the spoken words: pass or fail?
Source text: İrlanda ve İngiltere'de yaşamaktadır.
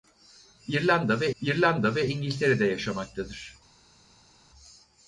fail